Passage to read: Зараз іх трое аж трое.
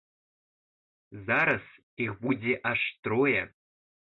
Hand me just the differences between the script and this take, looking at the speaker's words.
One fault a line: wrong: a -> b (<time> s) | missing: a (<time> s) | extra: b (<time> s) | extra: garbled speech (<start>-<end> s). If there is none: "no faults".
wrong: трое -> будзе (2.2 s)